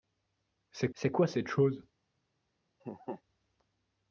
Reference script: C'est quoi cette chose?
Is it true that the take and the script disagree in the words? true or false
true